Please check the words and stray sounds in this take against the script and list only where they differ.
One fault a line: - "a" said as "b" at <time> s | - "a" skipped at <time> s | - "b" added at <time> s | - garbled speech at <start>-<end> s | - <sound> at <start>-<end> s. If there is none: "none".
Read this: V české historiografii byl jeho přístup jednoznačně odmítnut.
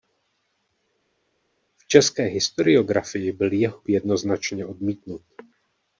- "přístup" skipped at 3.8 s